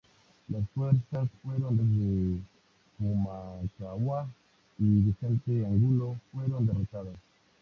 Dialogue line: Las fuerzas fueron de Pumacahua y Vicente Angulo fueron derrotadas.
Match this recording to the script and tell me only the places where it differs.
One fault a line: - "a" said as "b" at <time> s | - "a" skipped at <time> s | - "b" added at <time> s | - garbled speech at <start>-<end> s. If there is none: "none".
none